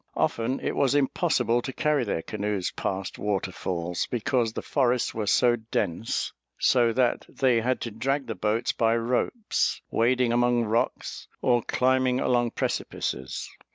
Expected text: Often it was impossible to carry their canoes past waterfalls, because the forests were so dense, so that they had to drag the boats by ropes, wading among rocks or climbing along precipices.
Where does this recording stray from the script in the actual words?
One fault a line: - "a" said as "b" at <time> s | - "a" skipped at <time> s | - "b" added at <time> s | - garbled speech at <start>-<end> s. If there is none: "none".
none